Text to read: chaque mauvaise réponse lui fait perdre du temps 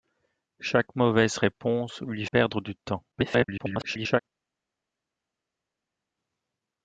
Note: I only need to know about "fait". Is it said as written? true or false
false